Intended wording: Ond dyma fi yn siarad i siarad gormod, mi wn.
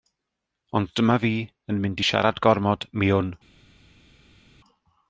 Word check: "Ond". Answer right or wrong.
right